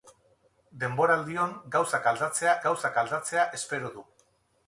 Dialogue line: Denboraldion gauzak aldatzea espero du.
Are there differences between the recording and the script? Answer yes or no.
yes